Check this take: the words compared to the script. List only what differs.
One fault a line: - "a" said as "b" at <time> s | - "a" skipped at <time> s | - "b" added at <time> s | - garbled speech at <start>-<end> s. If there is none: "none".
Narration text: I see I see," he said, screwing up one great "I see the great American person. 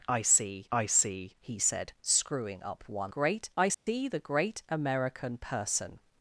none